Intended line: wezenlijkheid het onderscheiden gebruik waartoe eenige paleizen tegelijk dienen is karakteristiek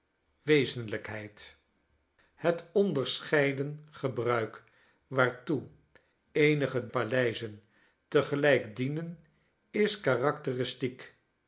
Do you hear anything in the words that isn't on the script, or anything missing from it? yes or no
no